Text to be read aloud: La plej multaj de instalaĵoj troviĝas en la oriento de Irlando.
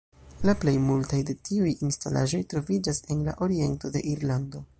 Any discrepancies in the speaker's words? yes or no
yes